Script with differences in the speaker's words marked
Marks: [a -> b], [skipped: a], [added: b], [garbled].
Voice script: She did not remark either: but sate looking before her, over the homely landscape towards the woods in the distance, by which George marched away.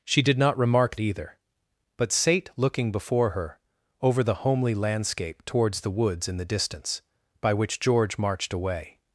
She did not remark either: but sate looking before her, over the homely landscape towards the woods in the distance, by which George marched away.